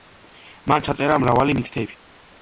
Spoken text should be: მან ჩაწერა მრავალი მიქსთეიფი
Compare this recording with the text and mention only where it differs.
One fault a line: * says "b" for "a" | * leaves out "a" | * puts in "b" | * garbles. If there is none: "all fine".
all fine